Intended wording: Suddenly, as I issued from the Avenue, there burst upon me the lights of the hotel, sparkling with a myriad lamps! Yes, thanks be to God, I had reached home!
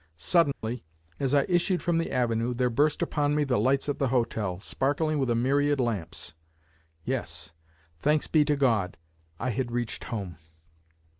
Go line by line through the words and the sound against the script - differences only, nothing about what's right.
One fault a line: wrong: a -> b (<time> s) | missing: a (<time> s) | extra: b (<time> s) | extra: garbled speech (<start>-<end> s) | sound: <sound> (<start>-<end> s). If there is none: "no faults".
sound: dropout (0.5-0.6 s)